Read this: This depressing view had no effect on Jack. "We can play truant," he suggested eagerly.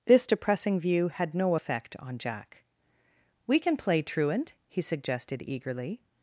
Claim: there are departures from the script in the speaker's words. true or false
false